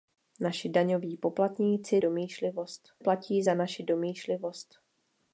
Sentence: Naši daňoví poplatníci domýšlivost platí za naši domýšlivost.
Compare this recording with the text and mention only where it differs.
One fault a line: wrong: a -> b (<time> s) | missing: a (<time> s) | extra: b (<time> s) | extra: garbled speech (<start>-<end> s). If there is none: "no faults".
no faults